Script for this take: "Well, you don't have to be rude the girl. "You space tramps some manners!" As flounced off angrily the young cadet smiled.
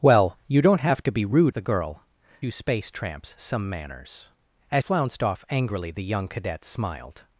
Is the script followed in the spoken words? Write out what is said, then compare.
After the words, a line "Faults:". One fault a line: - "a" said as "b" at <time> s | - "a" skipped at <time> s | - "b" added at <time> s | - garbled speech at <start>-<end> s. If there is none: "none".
"Well, you don't have to be rude the girl. "You space tramps some manners!" As flounced off angrily the young cadet smiled.
Faults:
none